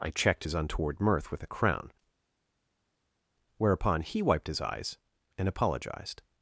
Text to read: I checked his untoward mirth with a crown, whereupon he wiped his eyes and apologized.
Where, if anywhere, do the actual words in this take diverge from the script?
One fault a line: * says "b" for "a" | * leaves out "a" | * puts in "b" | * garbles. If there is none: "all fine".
all fine